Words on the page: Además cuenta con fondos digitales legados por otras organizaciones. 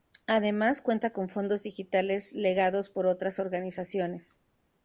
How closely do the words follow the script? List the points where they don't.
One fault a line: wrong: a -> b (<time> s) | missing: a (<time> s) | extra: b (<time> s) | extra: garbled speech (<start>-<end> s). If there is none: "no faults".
no faults